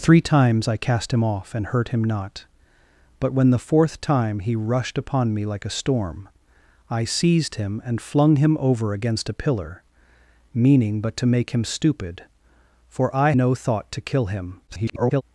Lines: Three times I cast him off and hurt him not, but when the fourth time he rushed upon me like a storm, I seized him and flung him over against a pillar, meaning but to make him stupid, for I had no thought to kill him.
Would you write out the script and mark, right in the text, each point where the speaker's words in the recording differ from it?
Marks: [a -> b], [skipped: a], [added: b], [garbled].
Three times I cast him off and hurt him not, but when the fourth time he rushed upon me like a storm, I seized him and flung him over against a pillar, meaning but to make him stupid, for I [skipped: had] no thought to kill him. [garbled]